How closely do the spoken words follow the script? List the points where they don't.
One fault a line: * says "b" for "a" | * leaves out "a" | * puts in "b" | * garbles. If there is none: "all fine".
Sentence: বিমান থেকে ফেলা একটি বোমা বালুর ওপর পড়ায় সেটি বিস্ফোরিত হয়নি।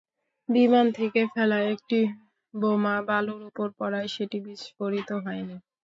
all fine